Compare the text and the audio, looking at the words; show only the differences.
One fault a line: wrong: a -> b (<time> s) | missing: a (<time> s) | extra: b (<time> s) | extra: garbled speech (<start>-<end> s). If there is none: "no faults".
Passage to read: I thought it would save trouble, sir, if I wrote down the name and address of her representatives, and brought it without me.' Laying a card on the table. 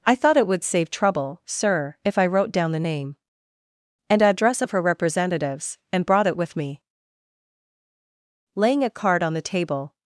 wrong: without -> with (6.3 s)